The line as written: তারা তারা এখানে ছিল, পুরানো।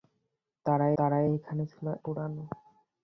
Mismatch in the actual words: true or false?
false